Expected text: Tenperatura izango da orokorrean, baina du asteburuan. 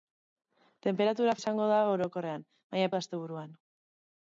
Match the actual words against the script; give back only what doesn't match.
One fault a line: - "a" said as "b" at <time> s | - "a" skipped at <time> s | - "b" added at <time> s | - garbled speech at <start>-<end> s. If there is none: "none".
none